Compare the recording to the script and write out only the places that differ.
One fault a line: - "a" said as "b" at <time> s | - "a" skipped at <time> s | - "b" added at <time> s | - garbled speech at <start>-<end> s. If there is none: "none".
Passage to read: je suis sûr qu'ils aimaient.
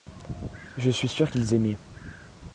none